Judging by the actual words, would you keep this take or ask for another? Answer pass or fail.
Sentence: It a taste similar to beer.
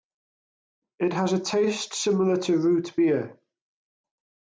fail